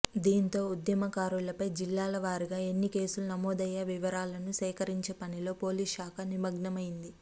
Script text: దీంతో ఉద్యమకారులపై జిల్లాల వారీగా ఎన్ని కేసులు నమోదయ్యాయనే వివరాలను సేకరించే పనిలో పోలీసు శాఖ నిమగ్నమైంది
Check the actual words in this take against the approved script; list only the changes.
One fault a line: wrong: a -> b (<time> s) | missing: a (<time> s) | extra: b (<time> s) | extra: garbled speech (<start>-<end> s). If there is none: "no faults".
no faults